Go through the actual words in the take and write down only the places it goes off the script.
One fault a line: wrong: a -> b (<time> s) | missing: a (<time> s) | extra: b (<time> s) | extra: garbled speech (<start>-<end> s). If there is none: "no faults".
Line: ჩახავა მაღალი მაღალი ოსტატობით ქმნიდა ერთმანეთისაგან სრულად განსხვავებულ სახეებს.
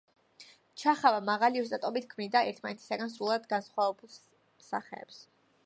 missing: მაღალი (1.6 s)